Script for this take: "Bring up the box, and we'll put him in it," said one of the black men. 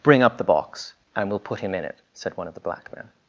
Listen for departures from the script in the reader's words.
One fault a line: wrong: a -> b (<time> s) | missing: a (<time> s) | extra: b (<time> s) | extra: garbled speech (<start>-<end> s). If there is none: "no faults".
no faults